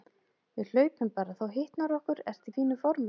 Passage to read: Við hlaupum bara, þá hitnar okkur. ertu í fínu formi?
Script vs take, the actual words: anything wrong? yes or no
no